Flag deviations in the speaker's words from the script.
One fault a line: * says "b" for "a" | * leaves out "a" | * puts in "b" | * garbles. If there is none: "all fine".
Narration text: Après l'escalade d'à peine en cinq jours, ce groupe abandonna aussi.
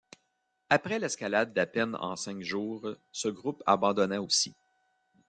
all fine